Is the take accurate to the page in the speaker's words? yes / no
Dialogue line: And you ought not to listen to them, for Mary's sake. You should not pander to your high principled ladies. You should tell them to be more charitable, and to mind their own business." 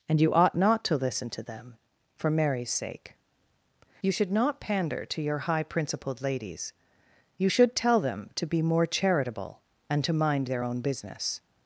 yes